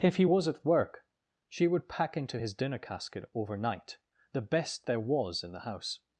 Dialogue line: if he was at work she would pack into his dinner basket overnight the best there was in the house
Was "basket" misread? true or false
true